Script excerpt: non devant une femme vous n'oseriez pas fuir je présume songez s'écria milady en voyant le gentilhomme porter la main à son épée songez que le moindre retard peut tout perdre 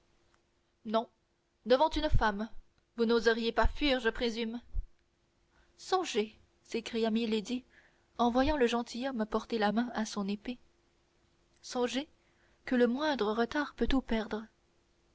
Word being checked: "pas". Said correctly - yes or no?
yes